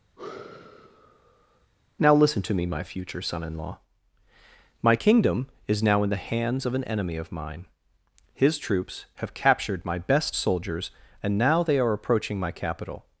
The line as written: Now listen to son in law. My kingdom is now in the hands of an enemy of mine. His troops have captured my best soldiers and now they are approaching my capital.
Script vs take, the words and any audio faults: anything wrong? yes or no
yes